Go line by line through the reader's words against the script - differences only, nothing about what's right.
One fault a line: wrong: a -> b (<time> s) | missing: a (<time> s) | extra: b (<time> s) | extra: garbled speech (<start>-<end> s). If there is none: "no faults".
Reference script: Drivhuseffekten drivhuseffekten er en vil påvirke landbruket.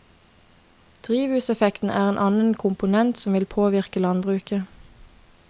missing: drivhuseffekten (1.9 s)
extra: annen komponent som (2.2 s)